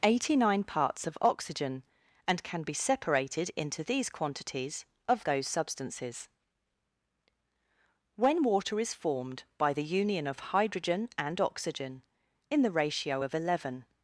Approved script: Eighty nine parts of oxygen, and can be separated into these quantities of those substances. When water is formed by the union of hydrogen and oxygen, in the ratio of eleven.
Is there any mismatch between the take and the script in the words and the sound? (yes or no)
no